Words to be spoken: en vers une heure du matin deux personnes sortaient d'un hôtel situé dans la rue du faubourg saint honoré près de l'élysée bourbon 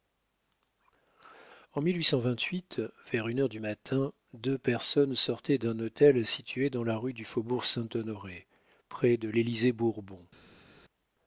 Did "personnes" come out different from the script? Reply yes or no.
no